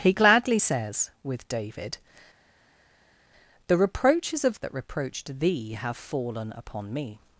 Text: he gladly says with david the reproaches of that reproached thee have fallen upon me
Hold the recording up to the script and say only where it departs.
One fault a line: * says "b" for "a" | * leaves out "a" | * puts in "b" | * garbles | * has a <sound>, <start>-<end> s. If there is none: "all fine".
all fine